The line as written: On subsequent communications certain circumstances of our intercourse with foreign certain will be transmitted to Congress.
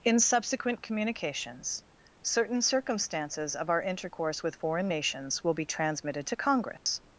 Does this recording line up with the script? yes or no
no